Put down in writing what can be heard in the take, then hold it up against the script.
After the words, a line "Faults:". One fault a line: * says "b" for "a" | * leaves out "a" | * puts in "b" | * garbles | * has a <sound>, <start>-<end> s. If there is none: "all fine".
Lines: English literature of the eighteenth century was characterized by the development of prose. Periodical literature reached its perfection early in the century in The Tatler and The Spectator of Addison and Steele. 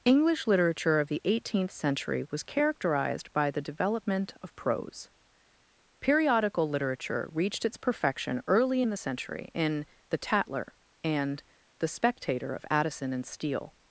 English literature of the eighteenth century was characterized by the development of prose. Periodical literature reached its perfection early in the century in The Tatler and The Spectator of Addison and Steele.
Faults:
all fine